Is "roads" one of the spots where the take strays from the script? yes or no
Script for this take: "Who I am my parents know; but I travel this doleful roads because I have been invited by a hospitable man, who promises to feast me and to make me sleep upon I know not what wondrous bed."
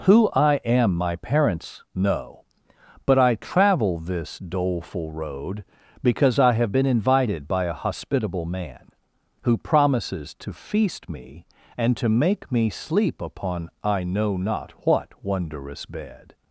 yes